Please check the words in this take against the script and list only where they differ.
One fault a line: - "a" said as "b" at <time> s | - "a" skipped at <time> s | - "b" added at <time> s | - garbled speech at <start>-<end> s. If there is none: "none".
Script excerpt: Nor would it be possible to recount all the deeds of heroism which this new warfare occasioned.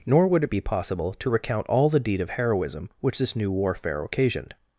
- "deeds" said as "deed" at 2.0 s